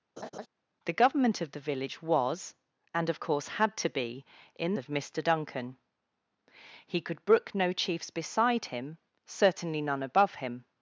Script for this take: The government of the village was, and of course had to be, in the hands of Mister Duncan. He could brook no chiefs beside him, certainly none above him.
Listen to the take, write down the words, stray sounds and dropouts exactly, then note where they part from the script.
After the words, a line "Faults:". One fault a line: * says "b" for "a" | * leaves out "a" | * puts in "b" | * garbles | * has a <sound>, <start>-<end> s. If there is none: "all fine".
The government of the village was, and of course had to be, in of Mister Duncan. He could brook no chiefs beside him, certainly none above him.
Faults:
* has a laugh, 0.2-0.5 s
* leaves out "the hands"